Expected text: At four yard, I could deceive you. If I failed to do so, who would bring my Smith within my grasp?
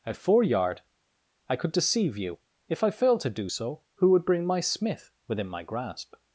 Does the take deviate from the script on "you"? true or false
false